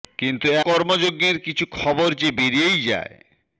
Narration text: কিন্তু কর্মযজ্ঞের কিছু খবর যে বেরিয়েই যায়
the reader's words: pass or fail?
pass